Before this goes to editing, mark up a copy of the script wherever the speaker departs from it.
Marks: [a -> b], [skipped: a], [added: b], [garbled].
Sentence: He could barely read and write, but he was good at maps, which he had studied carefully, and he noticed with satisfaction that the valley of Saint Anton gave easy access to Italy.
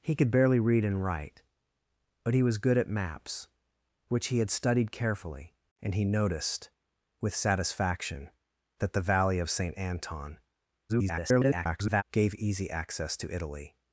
He could barely read and write, but he was good at maps, which he had studied carefully, and he noticed with satisfaction that the valley of Saint Anton [garbled] gave easy access to Italy.